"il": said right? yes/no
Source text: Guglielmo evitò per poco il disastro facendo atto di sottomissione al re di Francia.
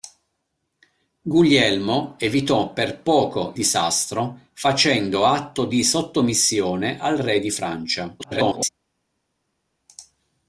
no